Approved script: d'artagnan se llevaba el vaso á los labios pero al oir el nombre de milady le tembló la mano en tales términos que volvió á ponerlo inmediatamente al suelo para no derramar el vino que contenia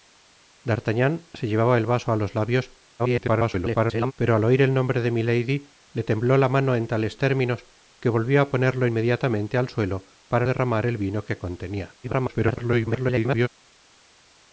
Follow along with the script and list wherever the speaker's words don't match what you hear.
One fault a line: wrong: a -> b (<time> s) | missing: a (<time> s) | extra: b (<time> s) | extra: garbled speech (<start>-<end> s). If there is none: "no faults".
extra: garbled speech (3.0-4.1 s)
missing: no (10.5 s)
extra: garbled speech (12.0-13.5 s)